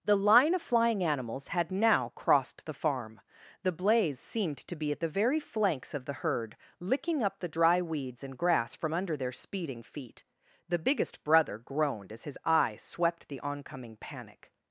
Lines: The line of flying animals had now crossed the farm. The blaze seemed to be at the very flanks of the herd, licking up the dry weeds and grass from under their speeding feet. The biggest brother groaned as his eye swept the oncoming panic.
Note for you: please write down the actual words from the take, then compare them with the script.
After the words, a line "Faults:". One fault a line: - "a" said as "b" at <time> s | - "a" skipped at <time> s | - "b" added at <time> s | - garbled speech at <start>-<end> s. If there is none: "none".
The line of flying animals had now crossed the farm. The blaze seemed to be at the very flanks of the herd, licking up the dry weeds and grass from under their speeding feet. The biggest brother groaned as his eye swept the oncoming panic.
Faults:
none